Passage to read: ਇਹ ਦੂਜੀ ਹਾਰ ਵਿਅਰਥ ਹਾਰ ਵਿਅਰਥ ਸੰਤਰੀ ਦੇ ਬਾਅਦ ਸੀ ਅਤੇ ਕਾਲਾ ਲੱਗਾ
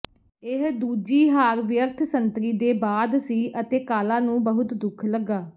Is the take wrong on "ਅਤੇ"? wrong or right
right